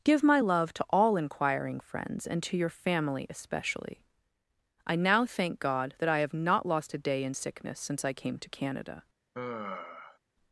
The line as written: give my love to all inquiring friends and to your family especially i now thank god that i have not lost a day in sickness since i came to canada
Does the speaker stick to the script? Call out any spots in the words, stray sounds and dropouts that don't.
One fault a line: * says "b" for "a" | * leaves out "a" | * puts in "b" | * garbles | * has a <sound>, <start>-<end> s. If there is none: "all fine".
* has a sigh, 9.3-10.2 s